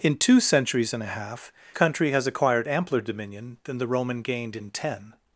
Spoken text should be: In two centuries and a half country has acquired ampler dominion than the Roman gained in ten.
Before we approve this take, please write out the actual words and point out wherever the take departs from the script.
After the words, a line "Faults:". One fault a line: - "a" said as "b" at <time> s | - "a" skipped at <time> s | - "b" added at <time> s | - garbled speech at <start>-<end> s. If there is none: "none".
In two centuries and a half country has acquired ampler dominion than the Roman gained in ten.
Faults:
none